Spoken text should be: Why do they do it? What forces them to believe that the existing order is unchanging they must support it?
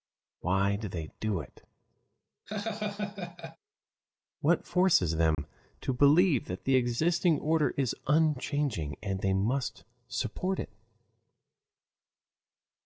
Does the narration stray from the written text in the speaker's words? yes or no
yes